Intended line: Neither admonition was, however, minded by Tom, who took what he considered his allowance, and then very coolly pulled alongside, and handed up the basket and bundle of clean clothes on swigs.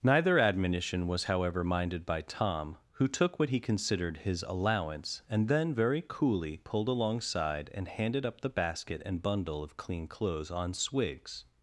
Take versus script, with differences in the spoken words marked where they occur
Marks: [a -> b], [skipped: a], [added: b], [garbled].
Neither admonition was, however, minded by Tom, who took what he considered his allowance, and then very coolly pulled alongside, and handed up the basket and bundle of clean clothes on swigs.